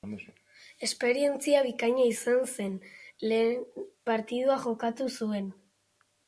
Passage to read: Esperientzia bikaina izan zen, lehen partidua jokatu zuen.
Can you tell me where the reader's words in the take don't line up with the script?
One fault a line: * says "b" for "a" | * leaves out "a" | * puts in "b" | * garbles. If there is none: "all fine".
all fine